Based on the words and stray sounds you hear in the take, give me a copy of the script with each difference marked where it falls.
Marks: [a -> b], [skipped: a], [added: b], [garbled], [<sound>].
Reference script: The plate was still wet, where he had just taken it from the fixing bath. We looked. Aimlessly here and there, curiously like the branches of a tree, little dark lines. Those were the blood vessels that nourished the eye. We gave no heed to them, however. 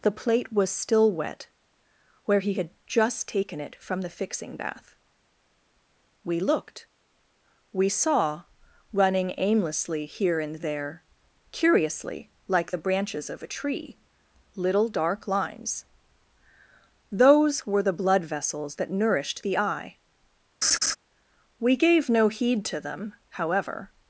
The plate was still wet, where he had just taken it from the fixing bath. We looked. [added: We saw running] Aimlessly here and there, curiously like the branches of a tree, little dark lines. Those were the blood vessels that nourished the eye. [laugh] We gave no heed to them, however.